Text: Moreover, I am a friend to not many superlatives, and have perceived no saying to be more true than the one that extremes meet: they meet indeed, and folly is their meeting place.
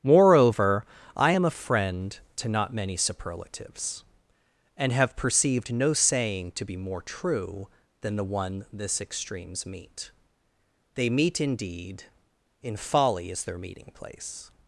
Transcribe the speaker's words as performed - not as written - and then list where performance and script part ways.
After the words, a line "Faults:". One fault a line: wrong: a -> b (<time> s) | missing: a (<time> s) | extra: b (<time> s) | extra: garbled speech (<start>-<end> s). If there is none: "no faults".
Moreover, I am a friend to not many superlatives, and have perceived no saying to be more true than the one this extremes meet: they meet indeed, in folly is their meeting place.
Faults:
wrong: that -> this (8.7 s)
wrong: and -> in (12.6 s)